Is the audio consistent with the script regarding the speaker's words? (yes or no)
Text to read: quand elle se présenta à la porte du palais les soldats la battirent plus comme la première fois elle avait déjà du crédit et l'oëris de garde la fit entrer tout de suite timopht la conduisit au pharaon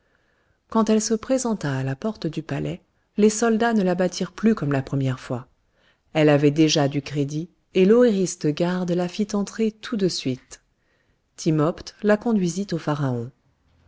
no